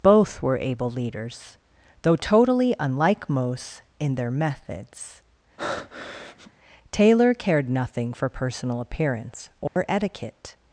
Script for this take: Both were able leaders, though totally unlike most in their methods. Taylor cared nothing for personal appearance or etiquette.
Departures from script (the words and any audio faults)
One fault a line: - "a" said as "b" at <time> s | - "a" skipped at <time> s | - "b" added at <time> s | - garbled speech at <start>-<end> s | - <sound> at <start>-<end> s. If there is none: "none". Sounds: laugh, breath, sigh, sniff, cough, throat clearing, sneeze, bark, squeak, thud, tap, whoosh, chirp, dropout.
- breath at 5.6-6.5 s
- dropout at 9.7-9.8 s